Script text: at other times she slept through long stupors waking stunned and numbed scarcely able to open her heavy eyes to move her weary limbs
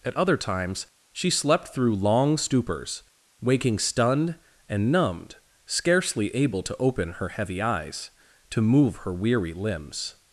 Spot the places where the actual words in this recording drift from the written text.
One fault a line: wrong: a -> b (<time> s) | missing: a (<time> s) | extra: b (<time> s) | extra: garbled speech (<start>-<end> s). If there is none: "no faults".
no faults